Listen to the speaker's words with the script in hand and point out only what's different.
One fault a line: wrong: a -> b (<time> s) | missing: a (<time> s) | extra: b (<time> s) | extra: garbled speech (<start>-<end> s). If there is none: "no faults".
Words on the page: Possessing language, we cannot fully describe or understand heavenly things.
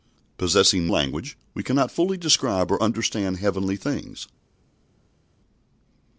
no faults